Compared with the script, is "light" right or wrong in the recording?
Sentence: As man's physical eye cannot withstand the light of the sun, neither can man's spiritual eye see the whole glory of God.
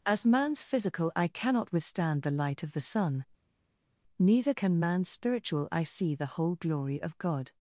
right